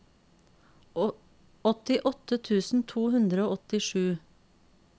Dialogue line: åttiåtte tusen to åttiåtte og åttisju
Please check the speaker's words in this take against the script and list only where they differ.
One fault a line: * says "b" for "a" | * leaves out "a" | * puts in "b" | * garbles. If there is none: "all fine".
* says "hundre" for "åttiåtte"